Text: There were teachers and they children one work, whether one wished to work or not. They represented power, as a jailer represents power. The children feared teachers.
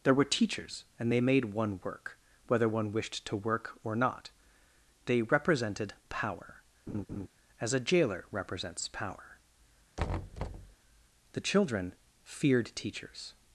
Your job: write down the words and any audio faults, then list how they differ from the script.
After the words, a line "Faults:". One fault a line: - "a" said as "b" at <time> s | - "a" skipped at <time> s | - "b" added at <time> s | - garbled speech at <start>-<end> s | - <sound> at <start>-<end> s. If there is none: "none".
There were teachers and they made one work, whether one wished to work or not. They represented power, as a jailer represents power. The children feared teachers.
Faults:
- "children" said as "made" at 1.2 s
- laugh at 6.9-7.3 s
- thud at 10.0-10.8 s